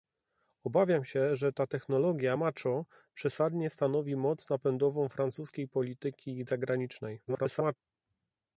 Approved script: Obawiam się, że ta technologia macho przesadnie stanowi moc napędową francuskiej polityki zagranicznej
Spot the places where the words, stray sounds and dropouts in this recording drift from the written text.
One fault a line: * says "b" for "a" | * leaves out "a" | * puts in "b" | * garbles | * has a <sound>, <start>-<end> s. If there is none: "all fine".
* garbles